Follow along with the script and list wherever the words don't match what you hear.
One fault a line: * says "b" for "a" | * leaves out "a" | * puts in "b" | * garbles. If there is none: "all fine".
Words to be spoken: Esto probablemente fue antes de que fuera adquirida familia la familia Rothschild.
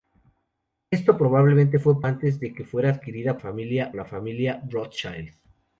all fine